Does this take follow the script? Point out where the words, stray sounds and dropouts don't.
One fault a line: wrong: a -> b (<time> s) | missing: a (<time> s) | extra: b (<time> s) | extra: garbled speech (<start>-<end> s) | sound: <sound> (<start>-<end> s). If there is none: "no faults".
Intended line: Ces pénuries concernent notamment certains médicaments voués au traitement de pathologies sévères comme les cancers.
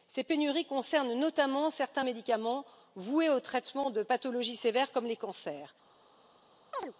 sound: chirp (6.7-6.9 s)